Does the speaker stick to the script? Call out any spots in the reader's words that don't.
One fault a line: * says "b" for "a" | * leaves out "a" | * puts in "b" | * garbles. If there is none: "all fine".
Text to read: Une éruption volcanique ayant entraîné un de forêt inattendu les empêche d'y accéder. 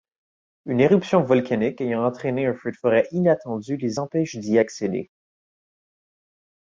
* puts in "feu"